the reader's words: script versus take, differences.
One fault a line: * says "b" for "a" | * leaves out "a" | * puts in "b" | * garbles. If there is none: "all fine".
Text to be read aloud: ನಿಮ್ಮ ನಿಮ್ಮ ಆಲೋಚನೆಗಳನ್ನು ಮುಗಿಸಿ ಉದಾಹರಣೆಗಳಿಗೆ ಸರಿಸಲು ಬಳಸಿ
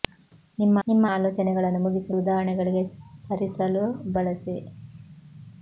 all fine